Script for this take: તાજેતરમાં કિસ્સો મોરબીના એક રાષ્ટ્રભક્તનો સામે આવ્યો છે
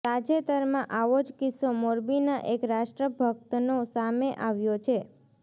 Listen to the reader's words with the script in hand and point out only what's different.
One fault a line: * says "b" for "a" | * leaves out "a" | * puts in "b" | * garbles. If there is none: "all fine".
* puts in "આવો જ"